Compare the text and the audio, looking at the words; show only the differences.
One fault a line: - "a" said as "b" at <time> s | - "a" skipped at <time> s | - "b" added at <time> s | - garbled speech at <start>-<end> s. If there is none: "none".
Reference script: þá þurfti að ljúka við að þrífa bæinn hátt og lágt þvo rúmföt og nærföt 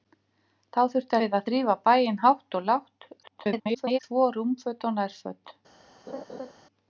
- "að ljúka" skipped at 1.2 s
- garbled speech at 3.2-4.0 s